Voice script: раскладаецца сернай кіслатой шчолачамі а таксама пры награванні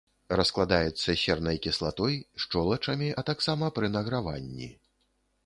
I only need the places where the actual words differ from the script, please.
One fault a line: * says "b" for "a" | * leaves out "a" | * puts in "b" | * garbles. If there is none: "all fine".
all fine